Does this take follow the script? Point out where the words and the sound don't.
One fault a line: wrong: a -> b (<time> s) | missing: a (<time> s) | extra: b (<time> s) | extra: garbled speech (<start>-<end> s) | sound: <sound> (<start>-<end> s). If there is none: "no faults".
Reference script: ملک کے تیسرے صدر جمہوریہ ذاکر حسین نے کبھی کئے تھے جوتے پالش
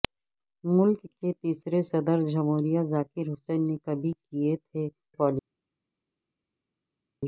missing: جوتے (4.9 s)